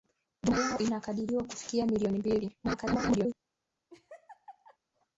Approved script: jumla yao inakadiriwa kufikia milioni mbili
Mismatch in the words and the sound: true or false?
true